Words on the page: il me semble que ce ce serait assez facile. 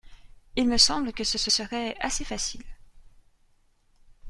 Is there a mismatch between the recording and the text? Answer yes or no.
no